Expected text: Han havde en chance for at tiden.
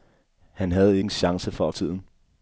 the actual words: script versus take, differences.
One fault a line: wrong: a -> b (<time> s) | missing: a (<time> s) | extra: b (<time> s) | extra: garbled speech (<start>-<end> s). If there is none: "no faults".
no faults